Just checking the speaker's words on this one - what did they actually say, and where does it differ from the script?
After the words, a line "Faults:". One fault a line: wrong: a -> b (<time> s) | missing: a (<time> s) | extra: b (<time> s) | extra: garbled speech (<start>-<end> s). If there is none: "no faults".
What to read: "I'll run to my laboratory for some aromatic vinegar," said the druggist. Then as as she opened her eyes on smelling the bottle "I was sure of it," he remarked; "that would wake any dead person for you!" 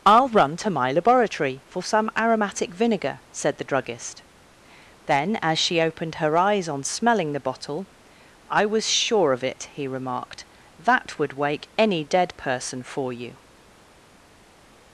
"I'll run to my laboratory for some aromatic vinegar," said the druggist. Then as she opened her eyes on smelling the bottle "I was sure of it," he remarked; "that would wake any dead person for you!"
Faults:
missing: as (5.6 s)